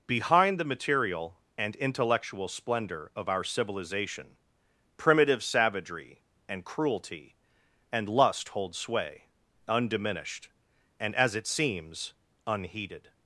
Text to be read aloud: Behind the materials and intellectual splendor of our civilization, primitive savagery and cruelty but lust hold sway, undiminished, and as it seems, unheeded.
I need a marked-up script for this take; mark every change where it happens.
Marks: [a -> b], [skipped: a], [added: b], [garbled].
Behind the [materials -> material] and intellectual splendor of our civilization, primitive savagery and cruelty [but -> and] lust hold sway, undiminished, and as it seems, unheeded.